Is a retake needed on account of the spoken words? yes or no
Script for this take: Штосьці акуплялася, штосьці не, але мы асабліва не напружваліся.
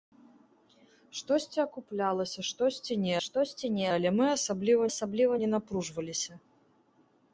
yes